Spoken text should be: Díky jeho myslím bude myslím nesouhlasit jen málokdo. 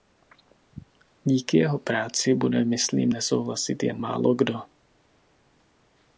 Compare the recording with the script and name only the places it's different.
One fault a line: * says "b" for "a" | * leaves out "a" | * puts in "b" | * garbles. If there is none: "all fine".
* says "práci" for "myslím"